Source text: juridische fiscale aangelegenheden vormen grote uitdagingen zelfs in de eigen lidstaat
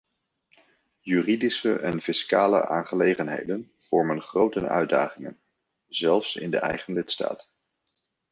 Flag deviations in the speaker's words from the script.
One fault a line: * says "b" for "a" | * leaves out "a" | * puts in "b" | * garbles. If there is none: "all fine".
* puts in "en"